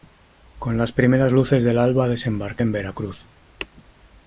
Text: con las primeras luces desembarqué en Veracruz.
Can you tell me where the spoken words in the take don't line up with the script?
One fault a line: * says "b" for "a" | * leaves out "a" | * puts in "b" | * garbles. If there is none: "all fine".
* puts in "del alba"